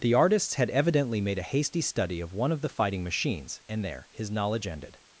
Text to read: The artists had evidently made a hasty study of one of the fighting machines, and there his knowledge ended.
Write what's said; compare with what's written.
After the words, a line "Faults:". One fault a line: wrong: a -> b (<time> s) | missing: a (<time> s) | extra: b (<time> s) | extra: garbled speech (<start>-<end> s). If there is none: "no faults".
The artists had evidently made a hasty study of one of the fighting machines, and there his knowledge ended.
Faults:
no faults